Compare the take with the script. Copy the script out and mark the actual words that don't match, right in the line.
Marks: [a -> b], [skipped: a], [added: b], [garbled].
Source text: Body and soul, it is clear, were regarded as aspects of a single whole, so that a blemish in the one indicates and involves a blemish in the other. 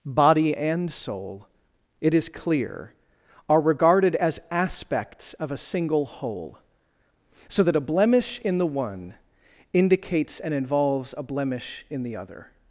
Body and soul, it is clear, [were -> are] regarded as aspects of a single whole, so that a blemish in the one indicates and involves a blemish in the other.